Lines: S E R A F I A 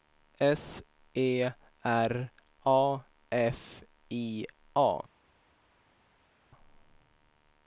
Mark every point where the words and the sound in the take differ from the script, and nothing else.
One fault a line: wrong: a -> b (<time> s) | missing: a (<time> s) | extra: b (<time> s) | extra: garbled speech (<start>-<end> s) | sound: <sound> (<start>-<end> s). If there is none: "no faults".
no faults